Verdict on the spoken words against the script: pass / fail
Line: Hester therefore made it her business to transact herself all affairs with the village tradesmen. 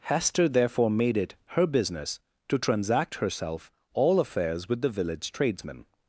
pass